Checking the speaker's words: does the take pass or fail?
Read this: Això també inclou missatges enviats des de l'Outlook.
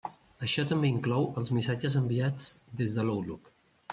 fail